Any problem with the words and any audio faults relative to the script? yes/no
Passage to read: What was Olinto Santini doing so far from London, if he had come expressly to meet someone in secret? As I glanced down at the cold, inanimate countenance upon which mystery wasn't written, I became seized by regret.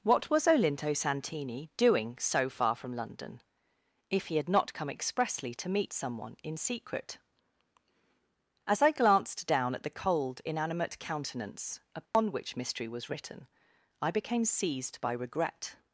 yes